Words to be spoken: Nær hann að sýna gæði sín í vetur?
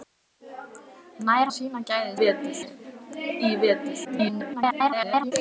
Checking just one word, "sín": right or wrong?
wrong